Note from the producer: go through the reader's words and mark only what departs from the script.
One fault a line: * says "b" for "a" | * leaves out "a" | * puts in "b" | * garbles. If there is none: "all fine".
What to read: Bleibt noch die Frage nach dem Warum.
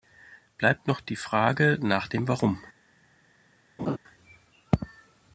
all fine